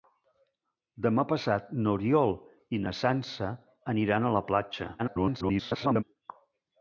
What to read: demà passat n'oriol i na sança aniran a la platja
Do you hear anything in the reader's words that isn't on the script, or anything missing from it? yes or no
yes